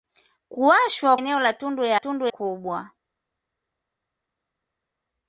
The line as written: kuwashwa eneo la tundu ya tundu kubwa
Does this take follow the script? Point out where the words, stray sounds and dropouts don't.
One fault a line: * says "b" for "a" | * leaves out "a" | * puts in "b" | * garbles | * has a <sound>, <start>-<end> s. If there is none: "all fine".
all fine